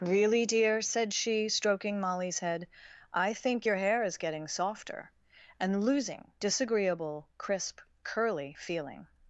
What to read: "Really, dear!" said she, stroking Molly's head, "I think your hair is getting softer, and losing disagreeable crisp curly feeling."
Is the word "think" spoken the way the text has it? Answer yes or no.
yes